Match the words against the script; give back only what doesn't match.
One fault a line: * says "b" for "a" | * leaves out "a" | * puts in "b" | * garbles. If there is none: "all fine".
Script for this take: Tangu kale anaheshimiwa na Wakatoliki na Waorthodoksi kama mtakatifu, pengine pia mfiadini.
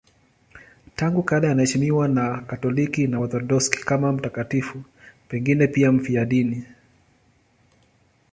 all fine